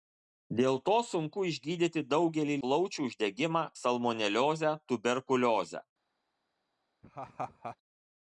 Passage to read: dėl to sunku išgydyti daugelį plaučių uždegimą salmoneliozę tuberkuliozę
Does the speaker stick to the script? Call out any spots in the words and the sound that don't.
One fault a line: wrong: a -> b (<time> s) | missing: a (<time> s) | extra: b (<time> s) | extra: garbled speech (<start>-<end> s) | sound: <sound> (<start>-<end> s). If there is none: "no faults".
sound: laugh (7.0-7.8 s)